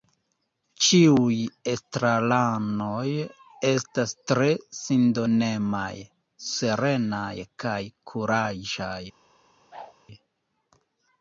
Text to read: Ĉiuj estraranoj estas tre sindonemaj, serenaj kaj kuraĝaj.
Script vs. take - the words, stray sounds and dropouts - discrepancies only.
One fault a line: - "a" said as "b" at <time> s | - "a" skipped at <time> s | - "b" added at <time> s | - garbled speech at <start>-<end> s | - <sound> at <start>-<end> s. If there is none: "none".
- whoosh at 9.7-9.9 s